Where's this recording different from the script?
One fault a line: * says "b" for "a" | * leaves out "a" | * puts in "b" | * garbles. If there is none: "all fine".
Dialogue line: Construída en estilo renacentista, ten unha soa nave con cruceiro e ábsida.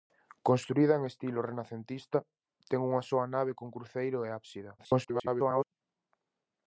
* garbles